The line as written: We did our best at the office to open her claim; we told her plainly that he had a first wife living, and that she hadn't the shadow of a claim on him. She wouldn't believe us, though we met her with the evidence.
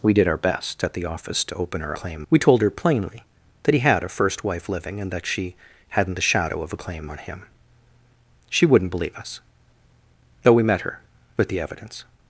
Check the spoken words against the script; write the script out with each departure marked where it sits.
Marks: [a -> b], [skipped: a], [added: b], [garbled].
We did our best at the office to open her claim; we told her plainly that he had a first wife living, and that she hadn't the shadow of a claim on him. She wouldn't believe us, though we met her with the evidence.